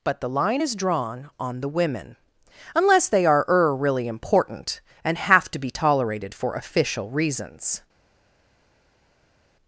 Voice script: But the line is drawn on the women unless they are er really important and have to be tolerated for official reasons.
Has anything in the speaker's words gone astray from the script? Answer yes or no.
no